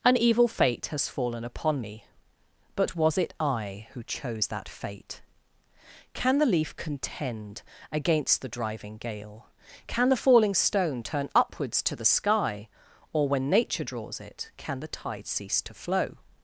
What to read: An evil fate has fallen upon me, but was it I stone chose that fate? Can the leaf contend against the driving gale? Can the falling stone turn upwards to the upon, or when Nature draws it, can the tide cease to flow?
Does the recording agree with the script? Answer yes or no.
no